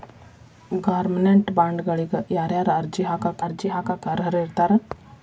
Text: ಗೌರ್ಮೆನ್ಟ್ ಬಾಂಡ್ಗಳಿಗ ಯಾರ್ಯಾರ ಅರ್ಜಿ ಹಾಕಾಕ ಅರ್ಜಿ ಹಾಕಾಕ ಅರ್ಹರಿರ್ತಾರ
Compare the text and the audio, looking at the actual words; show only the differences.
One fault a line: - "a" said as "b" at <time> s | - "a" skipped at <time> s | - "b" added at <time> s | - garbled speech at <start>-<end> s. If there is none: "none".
none